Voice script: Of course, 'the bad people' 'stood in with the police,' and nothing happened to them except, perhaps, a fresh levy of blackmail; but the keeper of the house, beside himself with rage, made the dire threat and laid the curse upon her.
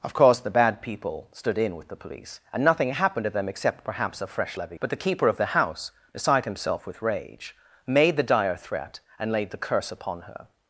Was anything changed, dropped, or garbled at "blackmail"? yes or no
yes